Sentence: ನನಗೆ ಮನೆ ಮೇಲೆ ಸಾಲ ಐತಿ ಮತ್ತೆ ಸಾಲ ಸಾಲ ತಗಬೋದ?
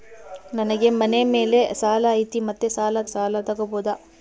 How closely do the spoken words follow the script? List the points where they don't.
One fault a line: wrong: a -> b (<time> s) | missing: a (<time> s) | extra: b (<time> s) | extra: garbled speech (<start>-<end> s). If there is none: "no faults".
no faults